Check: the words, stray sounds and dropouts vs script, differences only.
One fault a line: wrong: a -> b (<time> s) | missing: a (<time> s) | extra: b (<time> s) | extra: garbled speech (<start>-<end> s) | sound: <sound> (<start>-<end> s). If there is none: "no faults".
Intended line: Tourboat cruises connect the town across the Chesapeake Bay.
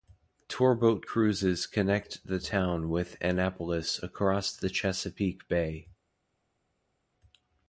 extra: with Annapolis (2.9 s)